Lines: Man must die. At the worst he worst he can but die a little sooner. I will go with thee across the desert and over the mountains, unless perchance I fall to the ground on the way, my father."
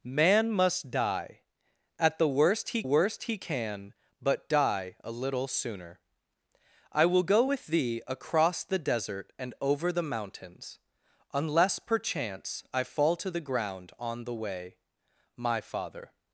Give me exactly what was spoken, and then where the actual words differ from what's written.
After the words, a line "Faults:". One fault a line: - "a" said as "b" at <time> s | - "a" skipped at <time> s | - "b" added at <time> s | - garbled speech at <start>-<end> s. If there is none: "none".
Man must die. At the worst he worst he can but die a little sooner. I will go with thee across the desert and over the mountains, unless perchance I fall to the ground on the way, my father."
Faults:
none